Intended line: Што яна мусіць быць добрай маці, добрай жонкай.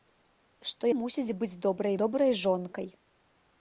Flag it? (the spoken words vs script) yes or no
yes